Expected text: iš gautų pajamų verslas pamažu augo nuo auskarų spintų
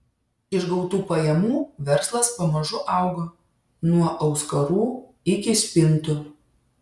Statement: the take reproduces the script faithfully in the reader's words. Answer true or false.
false